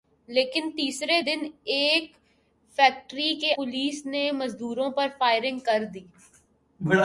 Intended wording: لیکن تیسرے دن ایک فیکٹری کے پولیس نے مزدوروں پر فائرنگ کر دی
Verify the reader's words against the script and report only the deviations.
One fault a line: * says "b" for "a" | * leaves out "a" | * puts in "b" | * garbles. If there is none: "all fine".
all fine